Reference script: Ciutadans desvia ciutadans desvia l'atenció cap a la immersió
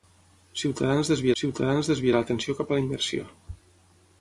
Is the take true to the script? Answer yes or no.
yes